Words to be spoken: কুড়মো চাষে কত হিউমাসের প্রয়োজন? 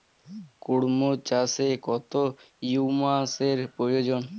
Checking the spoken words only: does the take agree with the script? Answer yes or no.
yes